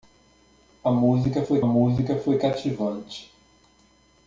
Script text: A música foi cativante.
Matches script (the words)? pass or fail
fail